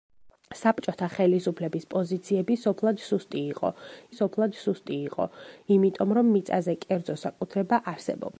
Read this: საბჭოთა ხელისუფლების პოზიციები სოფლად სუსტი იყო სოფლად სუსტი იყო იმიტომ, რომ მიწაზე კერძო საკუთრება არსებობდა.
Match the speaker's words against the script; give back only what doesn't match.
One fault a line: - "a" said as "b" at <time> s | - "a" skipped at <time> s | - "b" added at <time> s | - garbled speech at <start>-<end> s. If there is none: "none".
none